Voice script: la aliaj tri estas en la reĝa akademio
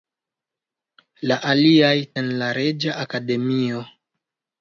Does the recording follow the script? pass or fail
fail